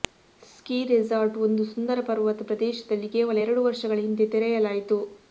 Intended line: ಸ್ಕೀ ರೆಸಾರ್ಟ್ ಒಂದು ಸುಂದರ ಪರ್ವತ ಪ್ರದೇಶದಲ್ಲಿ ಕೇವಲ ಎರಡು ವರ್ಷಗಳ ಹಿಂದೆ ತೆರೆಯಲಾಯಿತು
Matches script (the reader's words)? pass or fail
pass